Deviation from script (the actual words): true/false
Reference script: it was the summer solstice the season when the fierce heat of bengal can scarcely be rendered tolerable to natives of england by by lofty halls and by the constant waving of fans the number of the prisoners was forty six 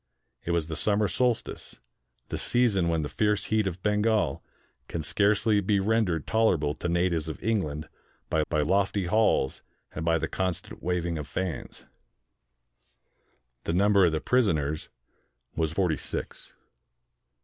false